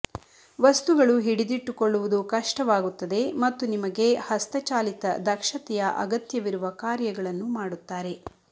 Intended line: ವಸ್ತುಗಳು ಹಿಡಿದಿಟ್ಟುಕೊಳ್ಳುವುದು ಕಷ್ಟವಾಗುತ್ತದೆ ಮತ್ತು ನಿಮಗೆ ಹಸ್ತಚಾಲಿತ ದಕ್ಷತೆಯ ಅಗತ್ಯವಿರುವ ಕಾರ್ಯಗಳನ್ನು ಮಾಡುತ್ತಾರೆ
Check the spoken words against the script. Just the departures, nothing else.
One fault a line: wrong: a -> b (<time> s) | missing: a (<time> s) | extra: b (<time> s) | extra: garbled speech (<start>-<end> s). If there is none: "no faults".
no faults